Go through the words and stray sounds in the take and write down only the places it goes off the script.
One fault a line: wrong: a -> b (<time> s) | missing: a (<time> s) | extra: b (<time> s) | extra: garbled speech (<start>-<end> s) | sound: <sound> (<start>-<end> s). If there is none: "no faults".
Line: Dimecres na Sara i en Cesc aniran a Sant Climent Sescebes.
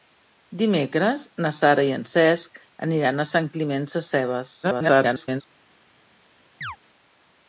extra: garbled speech (4.6-5.4 s)
sound: chirp (6.6-6.8 s)